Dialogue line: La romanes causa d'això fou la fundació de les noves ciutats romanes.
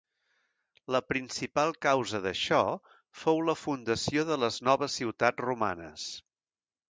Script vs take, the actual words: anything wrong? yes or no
yes